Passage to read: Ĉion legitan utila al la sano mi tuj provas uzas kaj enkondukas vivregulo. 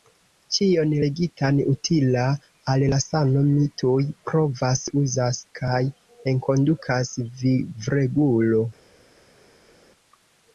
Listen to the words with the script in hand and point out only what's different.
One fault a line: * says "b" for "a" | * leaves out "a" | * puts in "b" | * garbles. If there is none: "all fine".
all fine